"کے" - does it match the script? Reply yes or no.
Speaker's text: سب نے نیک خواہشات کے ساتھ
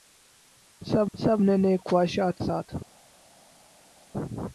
no